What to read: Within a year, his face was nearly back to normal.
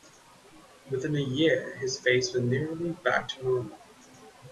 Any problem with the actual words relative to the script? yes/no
no